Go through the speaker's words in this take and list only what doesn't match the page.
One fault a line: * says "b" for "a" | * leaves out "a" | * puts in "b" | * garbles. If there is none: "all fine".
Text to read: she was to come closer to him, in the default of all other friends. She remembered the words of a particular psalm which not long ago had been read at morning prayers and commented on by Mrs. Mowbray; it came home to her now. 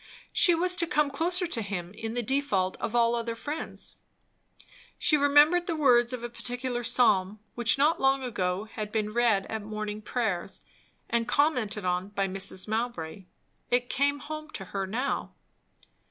all fine